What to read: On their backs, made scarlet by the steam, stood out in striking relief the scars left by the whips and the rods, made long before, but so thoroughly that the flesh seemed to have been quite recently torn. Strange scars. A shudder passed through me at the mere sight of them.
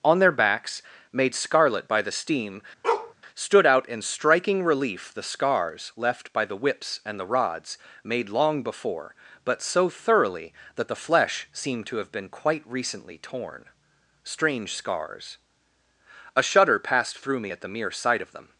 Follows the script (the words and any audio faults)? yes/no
no